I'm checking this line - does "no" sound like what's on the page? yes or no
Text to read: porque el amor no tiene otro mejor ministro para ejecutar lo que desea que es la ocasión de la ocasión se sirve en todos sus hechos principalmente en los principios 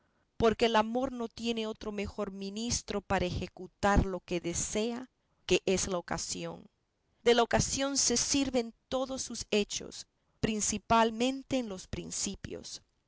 yes